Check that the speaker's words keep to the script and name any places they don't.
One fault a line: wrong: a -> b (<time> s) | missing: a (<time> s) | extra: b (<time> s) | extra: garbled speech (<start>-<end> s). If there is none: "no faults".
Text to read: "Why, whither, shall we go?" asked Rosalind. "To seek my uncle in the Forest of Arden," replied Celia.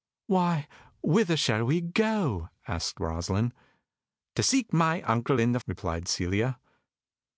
missing: Forest of Arden (5.6 s)